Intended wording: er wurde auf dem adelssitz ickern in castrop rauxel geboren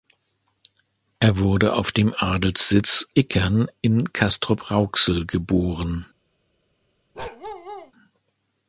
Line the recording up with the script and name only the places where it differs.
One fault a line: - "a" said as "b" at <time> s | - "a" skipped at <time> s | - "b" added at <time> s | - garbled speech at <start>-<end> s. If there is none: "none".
none